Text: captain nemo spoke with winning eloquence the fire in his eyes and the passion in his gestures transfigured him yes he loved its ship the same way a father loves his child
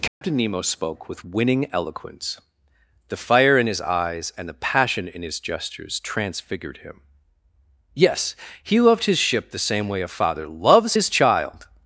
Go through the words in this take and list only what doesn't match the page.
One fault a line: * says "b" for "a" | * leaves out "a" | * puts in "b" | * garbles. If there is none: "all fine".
* says "his" for "its"